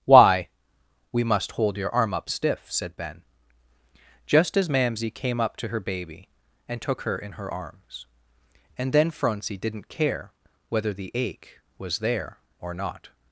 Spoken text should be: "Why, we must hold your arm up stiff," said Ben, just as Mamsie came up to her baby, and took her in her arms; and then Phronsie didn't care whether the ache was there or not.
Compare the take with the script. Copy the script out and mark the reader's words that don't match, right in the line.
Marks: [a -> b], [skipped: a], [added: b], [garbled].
"Why, we must hold your arm up stiff," said Ben, just as Mamsie came up to her baby, and took her in her arms; and then Phronsie didn't care whether the ache was there or not.